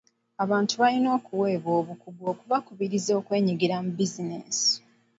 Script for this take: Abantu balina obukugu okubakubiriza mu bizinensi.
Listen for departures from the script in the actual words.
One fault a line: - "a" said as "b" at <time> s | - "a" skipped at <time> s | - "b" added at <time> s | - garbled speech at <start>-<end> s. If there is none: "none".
- "okuweebwa" added at 1.2 s
- "okwenyigira" added at 3.2 s